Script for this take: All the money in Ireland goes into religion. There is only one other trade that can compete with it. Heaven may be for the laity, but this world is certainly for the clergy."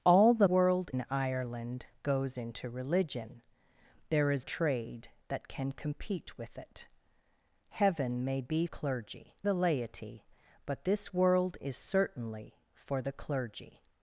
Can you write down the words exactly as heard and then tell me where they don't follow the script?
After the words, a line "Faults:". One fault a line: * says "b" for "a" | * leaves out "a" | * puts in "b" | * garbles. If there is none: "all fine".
All the world in Ireland goes into religion. There is trade that can compete with it. Heaven may be clergy the laity, but this world is certainly for the clergy."
Faults:
* says "world" for "money"
* leaves out "only one other"
* says "clergy" for "for"